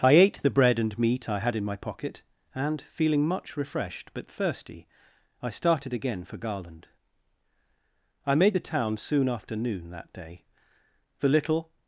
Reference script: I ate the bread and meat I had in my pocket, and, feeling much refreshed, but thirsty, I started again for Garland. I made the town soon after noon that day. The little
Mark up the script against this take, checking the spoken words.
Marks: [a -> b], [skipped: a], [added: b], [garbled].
I ate the bread and meat I had in my pocket, and, feeling much refreshed, but thirsty, I started again for Garland. I made the town soon after noon that day. The little